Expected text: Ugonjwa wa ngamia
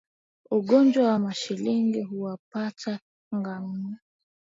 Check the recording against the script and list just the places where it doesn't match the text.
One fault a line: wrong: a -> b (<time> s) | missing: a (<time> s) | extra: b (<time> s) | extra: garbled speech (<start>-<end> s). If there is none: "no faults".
extra: mashilingi huwapata (1.2 s)